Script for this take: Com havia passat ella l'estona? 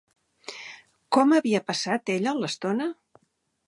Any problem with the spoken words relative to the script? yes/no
no